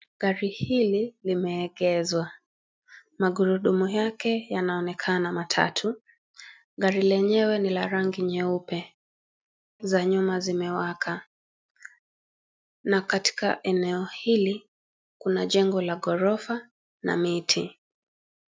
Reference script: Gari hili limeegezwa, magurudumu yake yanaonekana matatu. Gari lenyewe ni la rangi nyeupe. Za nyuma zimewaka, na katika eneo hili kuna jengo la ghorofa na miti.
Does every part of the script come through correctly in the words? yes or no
yes